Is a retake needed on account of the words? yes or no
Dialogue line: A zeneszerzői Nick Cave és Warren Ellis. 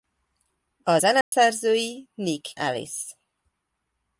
yes